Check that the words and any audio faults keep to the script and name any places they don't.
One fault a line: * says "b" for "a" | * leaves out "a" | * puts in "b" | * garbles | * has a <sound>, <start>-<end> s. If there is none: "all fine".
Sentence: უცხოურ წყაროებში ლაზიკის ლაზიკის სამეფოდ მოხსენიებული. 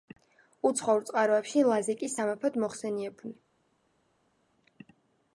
* leaves out "ლაზიკის"